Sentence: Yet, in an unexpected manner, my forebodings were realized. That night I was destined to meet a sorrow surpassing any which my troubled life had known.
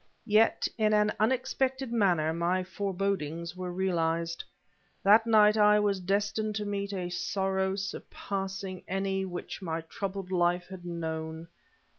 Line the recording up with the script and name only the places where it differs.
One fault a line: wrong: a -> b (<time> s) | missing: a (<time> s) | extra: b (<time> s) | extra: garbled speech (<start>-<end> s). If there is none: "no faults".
no faults